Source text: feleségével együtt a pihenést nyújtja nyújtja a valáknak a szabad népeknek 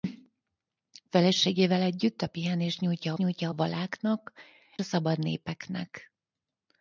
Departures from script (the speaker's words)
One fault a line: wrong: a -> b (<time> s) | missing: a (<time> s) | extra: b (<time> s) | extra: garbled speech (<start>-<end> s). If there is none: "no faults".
no faults